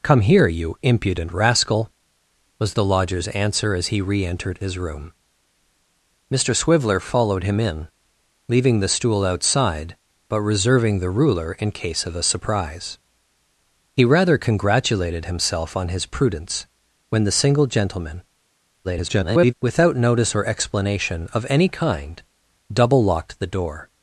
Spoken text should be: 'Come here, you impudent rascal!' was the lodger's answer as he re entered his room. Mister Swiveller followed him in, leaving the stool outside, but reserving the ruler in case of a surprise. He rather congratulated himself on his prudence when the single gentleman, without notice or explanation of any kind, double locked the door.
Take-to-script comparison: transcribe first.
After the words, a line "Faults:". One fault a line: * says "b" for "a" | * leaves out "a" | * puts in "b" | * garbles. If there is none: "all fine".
'Come here, you impudent rascal!' was the lodger's answer as he re entered his room. Mister Swiveller followed him in, leaving the stool outside, but reserving the ruler in case of a surprise. He rather congratulated himself on his prudence when the single gentleman, [garbled] without notice or explanation of any kind, double locked the door.
Faults:
* garbles